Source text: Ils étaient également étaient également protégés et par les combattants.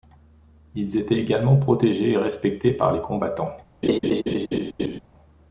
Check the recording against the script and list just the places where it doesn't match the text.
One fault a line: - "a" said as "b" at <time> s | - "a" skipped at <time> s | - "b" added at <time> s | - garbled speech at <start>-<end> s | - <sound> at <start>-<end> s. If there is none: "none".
- "étaient également" skipped at 1.6 s
- "respectés" added at 2.1 s
- laugh at 3.8-5.0 s